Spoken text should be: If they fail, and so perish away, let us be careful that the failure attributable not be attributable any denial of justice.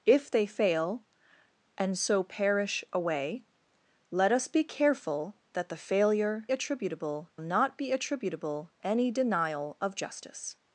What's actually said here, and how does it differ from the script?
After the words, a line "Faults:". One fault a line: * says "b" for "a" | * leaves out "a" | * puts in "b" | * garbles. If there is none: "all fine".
If they fail, and so perish away, let us be careful that the failure attributable not be attributable any denial of justice.
Faults:
all fine